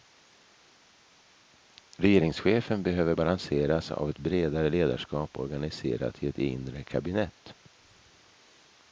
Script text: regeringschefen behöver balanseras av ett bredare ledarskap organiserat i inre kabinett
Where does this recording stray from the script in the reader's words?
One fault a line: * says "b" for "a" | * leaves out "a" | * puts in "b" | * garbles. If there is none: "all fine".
* puts in "ett"